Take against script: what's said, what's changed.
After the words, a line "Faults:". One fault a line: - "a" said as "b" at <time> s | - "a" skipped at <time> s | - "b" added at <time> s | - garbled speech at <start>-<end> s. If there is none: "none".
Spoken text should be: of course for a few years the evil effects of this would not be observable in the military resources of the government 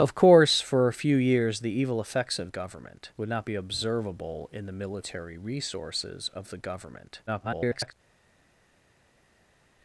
of course for a few years the evil effects of government would not be observable in the military resources of the government [garbled]
Faults:
- "this" said as "government" at 2.5 s
- garbled speech at 7.3-7.9 s